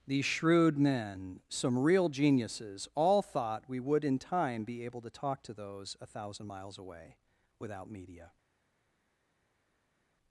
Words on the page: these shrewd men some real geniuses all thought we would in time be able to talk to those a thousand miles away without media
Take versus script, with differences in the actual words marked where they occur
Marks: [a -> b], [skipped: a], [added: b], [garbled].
these shrewd men some real geniuses all thought we would in time be able to talk to those a thousand miles away without media